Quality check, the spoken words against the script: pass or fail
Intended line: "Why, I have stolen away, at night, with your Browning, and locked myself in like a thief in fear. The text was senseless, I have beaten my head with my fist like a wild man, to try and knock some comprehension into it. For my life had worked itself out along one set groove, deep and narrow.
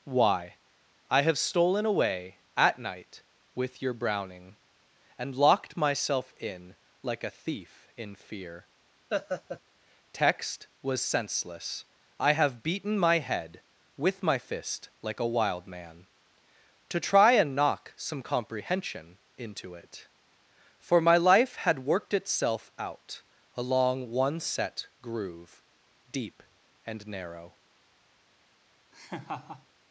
fail